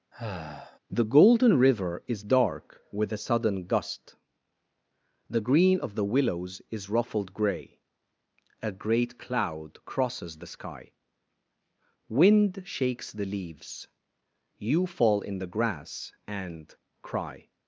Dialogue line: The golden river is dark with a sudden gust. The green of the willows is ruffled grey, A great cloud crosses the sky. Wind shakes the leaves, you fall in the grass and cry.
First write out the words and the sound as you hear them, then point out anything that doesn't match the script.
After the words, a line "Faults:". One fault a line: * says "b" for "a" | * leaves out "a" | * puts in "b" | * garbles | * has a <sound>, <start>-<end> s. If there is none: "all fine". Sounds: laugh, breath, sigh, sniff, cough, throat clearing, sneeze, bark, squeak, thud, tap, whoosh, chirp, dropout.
The golden river is dark with a sudden gust. The green of the willows is ruffled grey, A great cloud crosses the sky. Wind shakes the leaves, you fall in the grass and cry.
Faults:
* has a sigh, 0.1-0.8 s